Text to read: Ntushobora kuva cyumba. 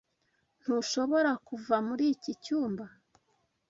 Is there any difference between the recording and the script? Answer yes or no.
yes